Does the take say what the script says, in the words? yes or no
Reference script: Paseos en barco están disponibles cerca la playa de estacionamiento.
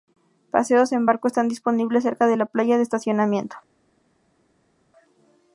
no